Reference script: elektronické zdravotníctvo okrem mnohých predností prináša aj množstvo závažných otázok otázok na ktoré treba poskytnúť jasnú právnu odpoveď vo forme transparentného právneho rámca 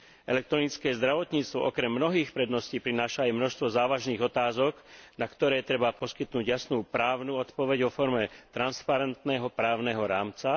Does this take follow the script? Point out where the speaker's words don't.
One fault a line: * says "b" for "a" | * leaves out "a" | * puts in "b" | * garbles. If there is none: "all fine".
* leaves out "otázok"